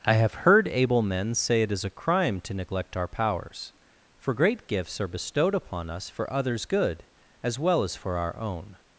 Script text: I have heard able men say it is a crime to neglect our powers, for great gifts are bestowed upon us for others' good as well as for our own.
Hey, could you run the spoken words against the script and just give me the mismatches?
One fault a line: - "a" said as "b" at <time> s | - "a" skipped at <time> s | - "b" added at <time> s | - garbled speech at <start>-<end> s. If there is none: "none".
none